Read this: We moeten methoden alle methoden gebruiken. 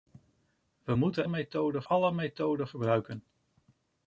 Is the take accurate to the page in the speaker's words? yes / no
yes